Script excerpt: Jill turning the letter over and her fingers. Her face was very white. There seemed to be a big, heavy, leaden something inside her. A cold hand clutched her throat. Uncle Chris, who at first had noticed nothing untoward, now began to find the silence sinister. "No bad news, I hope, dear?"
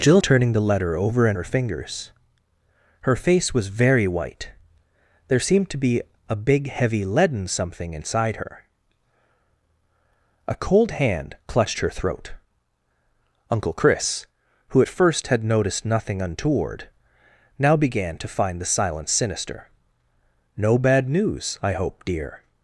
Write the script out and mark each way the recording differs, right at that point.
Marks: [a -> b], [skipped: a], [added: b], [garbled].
Jill turning the letter over and her fingers. Her face was very white. There seemed to be a big, heavy, leaden something inside her. A cold hand clutched her throat. Uncle Chris, who at first had noticed nothing untoward, now began to find the silence sinister. "No bad news, I hope, dear?"